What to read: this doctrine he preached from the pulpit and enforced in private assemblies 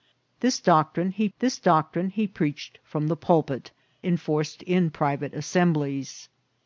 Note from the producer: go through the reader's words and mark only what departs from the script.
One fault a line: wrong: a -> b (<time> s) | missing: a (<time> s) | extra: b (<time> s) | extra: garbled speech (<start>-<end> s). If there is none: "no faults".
extra: this doctrine he (1.4 s)
missing: and (3.7 s)